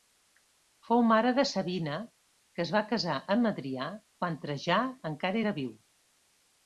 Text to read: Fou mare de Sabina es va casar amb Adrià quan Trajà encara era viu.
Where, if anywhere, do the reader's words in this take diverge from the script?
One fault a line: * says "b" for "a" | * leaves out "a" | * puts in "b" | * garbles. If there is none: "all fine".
* puts in "que"